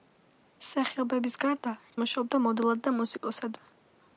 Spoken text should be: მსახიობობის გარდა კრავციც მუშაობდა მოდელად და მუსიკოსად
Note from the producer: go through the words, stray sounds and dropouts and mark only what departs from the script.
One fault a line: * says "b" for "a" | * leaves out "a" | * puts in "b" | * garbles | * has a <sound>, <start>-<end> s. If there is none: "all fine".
* leaves out "კრავციც"
* has a dropout, 3.2-3.2 s